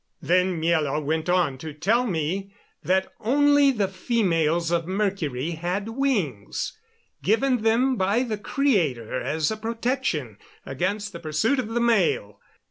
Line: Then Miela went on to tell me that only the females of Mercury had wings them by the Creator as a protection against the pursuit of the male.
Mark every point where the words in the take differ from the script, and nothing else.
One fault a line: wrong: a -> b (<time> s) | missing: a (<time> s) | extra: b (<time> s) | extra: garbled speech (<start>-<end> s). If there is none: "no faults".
extra: given (7.2 s)